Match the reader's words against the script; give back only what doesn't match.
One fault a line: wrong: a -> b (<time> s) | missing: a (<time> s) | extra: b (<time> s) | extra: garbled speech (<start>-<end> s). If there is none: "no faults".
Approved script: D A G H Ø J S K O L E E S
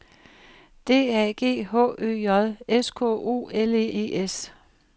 no faults